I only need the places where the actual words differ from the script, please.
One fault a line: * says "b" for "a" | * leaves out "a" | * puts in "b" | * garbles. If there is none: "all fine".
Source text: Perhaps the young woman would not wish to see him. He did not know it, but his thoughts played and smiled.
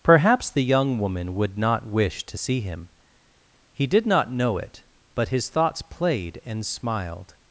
all fine